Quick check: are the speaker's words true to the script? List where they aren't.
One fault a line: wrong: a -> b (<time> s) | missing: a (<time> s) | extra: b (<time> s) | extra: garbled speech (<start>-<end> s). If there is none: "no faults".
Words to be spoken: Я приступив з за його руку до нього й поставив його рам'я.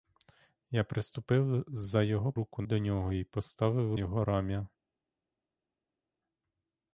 no faults